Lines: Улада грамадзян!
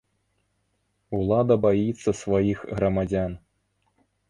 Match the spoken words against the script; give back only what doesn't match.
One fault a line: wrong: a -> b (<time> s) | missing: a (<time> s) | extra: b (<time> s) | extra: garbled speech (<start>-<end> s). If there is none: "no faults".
extra: баіцца сваіх (1.7 s)